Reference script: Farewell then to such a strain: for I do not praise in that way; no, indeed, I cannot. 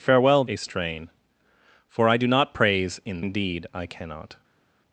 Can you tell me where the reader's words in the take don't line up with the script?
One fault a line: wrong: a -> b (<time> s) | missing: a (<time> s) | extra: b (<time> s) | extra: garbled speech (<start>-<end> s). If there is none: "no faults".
missing: then to such (0.4 s)
missing: that way no (3.2 s)